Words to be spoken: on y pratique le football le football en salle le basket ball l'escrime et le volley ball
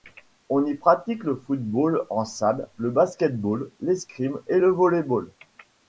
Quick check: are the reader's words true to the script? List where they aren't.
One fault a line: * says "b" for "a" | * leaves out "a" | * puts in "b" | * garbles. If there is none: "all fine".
* leaves out "le football"